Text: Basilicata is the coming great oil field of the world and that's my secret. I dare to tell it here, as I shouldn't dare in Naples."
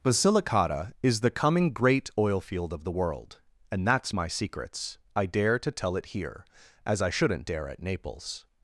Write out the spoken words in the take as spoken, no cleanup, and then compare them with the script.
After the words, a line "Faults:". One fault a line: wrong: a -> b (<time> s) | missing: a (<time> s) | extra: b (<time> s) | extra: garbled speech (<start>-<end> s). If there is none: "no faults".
Basilicata is the coming great oil field of the world and that's my secrets. I dare to tell it here, as I shouldn't dare at Naples."
Faults:
wrong: secret -> secrets (4.3 s)
wrong: in -> at (7.7 s)